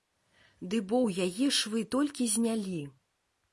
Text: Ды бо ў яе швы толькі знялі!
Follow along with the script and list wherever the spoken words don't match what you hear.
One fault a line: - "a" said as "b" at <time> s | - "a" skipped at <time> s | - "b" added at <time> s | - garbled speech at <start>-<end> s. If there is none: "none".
none